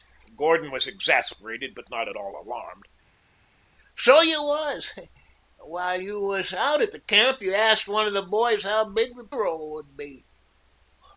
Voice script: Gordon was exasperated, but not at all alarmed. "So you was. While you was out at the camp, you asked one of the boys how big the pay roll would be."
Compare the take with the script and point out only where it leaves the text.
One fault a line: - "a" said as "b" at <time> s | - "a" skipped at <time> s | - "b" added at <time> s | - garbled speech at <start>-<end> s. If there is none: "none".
- "pay" skipped at 9.3 s